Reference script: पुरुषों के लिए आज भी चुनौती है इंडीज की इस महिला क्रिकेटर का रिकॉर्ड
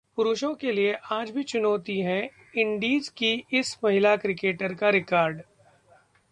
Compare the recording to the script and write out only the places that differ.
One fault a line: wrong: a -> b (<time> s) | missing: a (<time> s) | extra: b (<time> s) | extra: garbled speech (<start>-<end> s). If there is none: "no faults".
no faults